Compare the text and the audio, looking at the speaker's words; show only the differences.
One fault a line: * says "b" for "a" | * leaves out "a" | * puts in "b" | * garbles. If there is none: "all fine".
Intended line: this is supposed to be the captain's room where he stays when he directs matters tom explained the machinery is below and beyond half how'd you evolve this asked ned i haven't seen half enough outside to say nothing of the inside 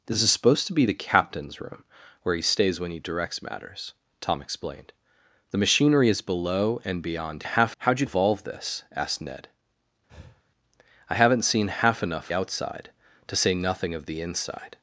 all fine